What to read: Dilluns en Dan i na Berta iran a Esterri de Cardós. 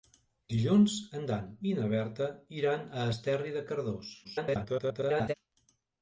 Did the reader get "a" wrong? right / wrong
right